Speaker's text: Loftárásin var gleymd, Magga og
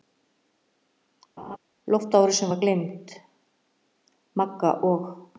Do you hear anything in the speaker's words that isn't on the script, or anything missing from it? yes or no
no